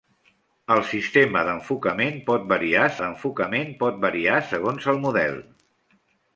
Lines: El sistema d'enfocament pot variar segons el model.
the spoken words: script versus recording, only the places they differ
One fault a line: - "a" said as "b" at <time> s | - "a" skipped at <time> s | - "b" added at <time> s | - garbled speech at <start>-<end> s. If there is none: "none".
- "d'enfocament pot variar" added at 3.0 s